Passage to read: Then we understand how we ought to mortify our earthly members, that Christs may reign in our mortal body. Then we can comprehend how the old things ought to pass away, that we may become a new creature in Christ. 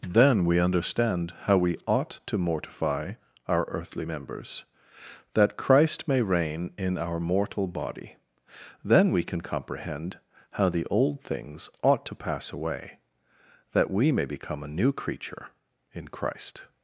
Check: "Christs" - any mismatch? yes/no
yes